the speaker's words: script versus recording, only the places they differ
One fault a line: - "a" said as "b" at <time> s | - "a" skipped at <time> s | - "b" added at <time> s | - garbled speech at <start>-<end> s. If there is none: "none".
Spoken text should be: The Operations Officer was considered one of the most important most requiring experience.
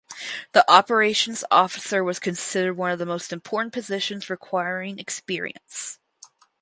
- "most" said as "positions" at 3.7 s